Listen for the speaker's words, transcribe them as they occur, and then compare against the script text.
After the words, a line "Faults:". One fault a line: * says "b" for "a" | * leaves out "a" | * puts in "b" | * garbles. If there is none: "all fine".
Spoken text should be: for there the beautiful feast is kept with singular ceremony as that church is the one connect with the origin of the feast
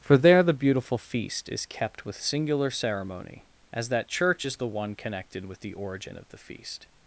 for there the beautiful feast is kept with singular ceremony as that church is the one connected with the origin of the feast
Faults:
* says "connected" for "connect"